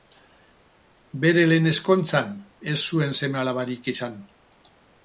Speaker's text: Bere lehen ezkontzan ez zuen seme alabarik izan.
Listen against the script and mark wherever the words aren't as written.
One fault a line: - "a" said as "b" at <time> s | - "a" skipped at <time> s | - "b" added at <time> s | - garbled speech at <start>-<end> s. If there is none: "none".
none